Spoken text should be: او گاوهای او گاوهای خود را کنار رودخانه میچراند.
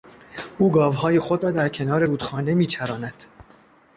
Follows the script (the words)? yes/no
no